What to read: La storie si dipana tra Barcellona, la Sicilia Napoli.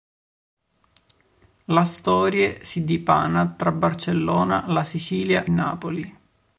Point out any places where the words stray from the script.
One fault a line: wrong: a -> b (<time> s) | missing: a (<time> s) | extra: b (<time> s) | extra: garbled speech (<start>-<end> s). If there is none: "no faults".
no faults